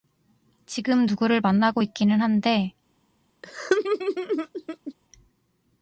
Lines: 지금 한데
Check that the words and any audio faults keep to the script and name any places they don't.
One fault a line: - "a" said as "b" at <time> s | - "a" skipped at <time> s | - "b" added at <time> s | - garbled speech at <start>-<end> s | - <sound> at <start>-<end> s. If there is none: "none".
- "누구를 만나고 있기는" added at 1.0 s
- laugh at 3.4-4.9 s